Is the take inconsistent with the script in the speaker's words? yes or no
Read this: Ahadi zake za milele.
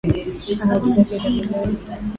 no